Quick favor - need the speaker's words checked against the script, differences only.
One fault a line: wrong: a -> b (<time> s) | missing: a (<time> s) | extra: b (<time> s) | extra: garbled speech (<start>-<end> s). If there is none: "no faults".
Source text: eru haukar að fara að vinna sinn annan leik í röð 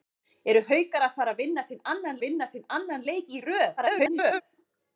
extra: vinna sinn annan (2.2 s)
extra: garbled speech (3.8-4.4 s)